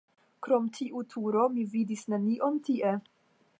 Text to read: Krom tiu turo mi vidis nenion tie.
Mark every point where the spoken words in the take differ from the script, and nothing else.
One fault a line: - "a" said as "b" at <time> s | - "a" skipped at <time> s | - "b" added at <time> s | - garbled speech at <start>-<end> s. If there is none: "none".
none